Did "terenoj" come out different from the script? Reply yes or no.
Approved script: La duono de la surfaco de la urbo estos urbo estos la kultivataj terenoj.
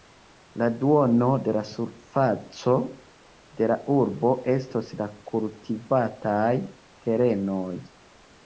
no